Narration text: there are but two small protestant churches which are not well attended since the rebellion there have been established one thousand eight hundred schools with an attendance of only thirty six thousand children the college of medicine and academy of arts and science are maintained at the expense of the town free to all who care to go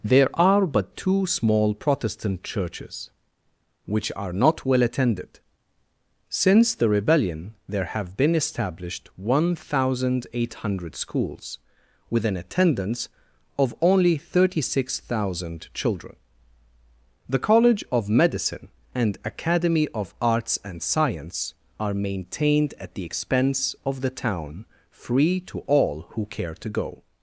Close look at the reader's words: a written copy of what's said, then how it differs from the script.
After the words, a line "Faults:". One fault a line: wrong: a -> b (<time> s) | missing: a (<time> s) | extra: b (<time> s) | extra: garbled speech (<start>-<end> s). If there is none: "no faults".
there are but two small protestant churches which are not well attended since the rebellion there have been established one thousand eight hundred schools with an attendance of only thirty six thousand children the college of medicine and academy of arts and science are maintained at the expense of the town free to all who care to go
Faults:
no faults